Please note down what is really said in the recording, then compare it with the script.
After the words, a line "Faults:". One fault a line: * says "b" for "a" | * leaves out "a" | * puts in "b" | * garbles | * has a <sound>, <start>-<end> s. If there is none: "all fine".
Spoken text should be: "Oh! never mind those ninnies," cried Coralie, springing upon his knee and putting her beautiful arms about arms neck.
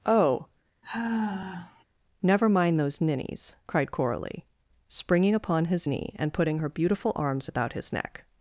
"Oh! never mind those ninnies," cried Coralie, springing upon his knee and putting her beautiful arms about his neck.
Faults:
* has a sigh, 0.8-1.8 s
* says "his" for "arms"